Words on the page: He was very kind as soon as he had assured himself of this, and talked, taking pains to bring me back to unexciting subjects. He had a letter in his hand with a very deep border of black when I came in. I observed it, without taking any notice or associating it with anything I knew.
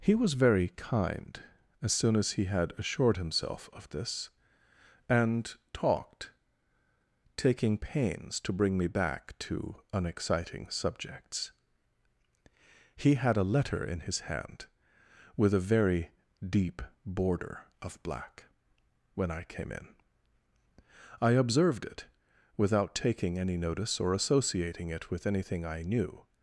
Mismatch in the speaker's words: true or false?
false